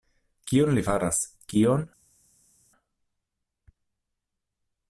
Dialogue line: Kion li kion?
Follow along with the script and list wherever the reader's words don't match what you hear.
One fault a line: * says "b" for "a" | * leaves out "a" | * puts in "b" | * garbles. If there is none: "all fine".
* puts in "faras"